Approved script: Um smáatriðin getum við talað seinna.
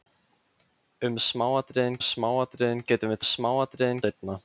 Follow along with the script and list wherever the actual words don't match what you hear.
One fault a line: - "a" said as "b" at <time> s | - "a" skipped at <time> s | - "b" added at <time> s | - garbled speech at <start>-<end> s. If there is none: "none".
- "smáatriðin" added at 2.1 s
- "talað" said as "smáatriðin" at 3.3 s